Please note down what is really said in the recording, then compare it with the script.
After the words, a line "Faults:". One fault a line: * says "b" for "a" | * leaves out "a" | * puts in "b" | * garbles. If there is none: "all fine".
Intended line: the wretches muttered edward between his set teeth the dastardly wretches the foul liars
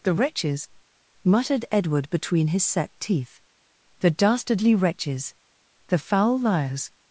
the wretches muttered edward between his set teeth the dastardly wretches the foul liars
Faults:
all fine